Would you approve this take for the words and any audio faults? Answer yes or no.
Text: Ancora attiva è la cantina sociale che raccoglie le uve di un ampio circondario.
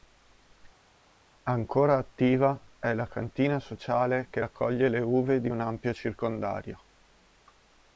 yes